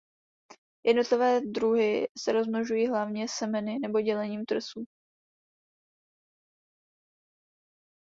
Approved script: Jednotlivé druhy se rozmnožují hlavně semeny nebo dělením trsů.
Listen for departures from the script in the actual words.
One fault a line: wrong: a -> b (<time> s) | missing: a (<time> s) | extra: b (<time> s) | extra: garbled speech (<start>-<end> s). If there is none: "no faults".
no faults